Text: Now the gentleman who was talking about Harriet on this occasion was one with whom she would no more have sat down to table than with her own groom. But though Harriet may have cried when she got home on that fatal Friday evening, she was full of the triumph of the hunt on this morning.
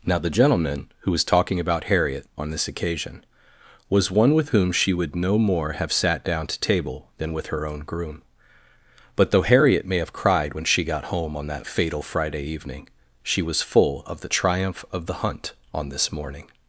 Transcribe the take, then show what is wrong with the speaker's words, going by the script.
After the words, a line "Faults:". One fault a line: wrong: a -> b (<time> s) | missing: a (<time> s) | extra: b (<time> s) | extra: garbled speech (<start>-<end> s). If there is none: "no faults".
Now the gentleman who was talking about Harriet on this occasion was one with whom she would no more have sat down to table than with her own groom. But though Harriet may have cried when she got home on that fatal Friday evening, she was full of the triumph of the hunt on this morning.
Faults:
no faults